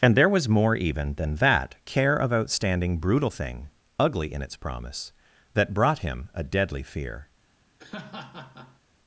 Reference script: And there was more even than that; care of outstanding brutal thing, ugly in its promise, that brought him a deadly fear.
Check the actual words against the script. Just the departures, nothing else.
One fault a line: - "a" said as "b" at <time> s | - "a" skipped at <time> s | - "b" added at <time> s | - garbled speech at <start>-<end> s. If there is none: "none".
none